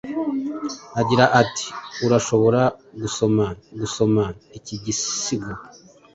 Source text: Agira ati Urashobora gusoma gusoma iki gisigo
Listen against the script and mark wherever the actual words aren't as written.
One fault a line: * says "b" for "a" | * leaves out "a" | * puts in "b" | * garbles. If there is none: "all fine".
all fine